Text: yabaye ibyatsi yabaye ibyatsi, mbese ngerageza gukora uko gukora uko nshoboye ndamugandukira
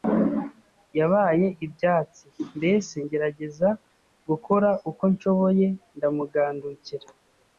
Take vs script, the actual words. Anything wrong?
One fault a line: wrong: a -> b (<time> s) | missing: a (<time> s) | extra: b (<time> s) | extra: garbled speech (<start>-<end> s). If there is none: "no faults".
missing: yabaye ibyatsi (2.2 s)
missing: gukora uko (5.0 s)